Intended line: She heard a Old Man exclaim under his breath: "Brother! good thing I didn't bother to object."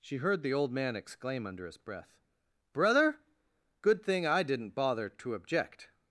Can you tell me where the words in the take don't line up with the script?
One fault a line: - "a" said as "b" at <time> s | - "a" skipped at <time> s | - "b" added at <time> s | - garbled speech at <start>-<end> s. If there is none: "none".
- "a" said as "the" at 0.4 s